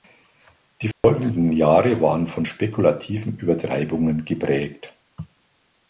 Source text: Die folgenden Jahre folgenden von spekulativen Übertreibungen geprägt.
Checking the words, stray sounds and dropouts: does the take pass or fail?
fail